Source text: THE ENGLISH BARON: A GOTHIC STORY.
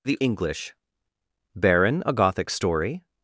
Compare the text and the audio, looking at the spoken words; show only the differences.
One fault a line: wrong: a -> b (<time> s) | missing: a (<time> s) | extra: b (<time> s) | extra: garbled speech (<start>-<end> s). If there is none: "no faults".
no faults